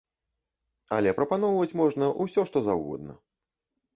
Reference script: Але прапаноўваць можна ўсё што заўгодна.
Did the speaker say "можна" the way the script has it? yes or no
yes